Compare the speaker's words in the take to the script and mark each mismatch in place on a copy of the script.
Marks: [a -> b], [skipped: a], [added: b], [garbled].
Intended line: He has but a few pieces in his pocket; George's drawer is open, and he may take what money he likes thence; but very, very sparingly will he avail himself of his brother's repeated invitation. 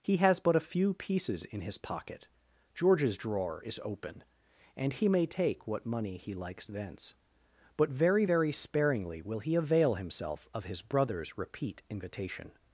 He has but a few pieces in his pocket; George's drawer is open, and he may take what money he likes thence; but very, very sparingly will he avail himself of his brother's [repeated -> repeat] invitation.